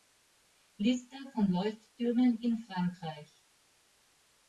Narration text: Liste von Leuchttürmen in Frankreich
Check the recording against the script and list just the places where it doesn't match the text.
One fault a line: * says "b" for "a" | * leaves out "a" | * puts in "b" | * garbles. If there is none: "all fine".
all fine